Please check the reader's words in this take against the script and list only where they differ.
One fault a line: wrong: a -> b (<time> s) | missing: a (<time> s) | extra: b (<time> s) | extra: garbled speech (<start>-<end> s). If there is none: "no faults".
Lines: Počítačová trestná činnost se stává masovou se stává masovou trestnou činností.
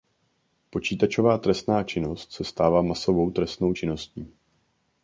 missing: se stává masovou (3.3 s)